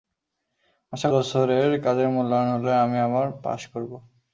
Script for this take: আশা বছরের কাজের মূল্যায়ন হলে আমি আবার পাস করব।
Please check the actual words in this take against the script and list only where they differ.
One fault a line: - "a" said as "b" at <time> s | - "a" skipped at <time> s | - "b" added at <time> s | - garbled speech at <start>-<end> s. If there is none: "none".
none